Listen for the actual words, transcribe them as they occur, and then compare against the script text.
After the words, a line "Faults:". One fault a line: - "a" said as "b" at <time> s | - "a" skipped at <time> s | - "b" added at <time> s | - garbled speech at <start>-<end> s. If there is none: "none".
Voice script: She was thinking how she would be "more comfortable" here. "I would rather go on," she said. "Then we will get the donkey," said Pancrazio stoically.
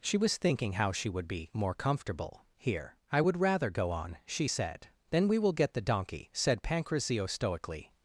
She was thinking how she would be "more comfortable" here. "I would rather go on," she said. "Then we will get the donkey," said Pancrazio stoically.
Faults:
none